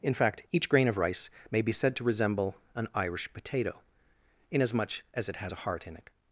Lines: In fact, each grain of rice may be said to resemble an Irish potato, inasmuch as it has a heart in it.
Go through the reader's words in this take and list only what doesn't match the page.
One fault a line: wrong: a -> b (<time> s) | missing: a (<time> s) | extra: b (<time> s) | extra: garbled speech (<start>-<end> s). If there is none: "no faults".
no faults